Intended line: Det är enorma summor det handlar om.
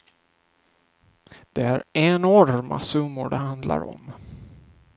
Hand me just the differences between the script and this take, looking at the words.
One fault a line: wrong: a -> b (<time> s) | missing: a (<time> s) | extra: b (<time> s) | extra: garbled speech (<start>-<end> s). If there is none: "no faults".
no faults